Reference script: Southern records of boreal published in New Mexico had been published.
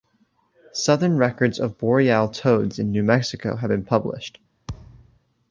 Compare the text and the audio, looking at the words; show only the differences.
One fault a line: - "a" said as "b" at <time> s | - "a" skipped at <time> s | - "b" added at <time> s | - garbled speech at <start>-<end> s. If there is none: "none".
- "published" said as "toads" at 2.3 s
- "had" said as "have" at 3.6 s